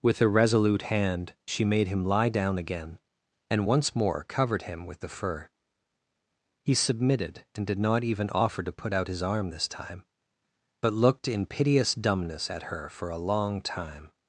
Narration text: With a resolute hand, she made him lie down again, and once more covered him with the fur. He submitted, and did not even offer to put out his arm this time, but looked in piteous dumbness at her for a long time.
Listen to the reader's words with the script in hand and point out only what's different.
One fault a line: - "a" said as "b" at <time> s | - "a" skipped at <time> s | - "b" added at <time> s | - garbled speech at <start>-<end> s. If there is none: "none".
none